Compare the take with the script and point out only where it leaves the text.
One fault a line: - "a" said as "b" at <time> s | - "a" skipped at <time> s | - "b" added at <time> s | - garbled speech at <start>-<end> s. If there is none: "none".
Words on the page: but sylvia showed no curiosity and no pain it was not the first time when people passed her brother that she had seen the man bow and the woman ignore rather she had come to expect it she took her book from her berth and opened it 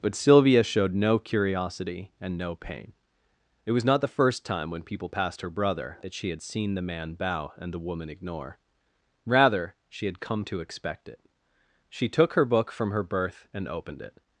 none